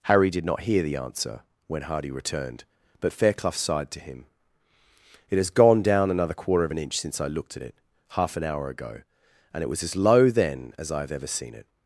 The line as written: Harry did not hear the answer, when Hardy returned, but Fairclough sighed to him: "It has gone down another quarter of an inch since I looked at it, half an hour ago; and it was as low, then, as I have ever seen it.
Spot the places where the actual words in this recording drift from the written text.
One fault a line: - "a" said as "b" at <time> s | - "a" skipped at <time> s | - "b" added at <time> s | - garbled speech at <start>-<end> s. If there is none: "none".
none